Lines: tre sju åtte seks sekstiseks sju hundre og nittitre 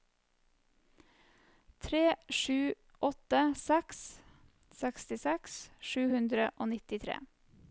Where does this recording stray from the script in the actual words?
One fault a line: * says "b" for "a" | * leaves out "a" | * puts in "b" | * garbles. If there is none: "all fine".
all fine